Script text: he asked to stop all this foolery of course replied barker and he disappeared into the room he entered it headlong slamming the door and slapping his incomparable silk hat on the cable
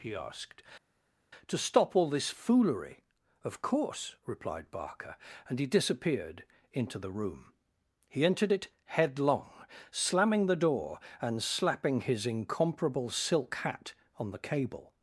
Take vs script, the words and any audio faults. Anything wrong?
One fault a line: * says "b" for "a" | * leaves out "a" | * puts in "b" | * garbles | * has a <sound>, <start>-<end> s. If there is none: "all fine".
all fine